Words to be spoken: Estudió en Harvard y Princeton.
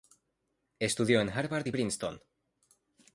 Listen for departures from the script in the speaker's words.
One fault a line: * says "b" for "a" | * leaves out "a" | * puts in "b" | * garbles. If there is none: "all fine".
all fine